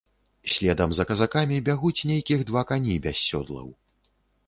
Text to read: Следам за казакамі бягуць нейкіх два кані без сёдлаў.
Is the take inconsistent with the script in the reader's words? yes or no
no